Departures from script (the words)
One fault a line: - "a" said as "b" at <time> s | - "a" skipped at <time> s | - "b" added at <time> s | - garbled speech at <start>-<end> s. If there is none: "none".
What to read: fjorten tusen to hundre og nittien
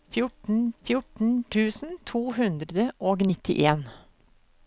- "fjorten" added at 0.8 s